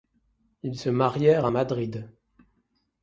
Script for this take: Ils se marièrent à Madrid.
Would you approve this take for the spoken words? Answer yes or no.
yes